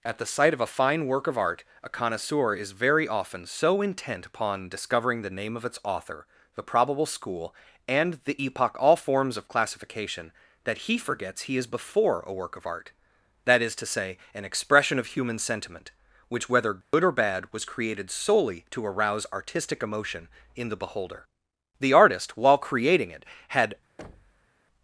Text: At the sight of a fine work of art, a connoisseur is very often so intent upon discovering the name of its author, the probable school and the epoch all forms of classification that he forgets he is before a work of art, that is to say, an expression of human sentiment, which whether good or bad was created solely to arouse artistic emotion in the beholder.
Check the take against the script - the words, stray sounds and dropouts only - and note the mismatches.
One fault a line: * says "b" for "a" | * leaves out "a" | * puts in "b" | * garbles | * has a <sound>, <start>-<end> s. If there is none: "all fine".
* has a dropout, 16.8-16.9 s
* puts in "The artist while creating it had"
* has a thud, 24.0-24.5 s